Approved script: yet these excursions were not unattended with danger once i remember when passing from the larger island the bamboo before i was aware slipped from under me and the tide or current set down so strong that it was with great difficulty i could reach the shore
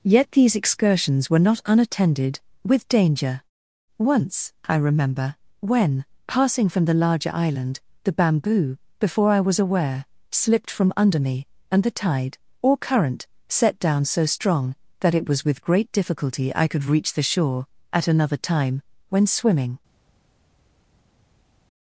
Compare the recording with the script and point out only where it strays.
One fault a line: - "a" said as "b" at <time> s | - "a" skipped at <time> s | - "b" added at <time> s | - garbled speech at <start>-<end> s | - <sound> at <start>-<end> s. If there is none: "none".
- "at another time when swimming" added at 17.9 s